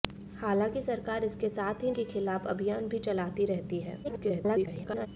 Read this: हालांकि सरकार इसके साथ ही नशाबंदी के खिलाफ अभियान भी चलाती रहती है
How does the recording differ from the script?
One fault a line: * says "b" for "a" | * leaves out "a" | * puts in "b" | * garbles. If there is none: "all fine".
* leaves out "नशाबंदी"
* garbles